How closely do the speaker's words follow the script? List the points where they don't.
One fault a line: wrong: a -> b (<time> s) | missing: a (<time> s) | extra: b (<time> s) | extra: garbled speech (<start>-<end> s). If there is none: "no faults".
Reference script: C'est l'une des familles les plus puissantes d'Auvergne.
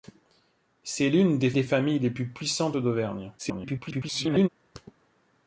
extra: des (1.5 s)
extra: garbled speech (3.4-4.5 s)